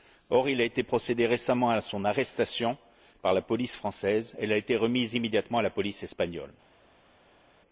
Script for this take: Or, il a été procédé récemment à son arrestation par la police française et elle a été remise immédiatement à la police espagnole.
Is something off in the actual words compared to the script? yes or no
no